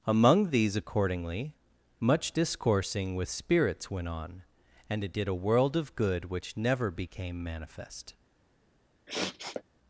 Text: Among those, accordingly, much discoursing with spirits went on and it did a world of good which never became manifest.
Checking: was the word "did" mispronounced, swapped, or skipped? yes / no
no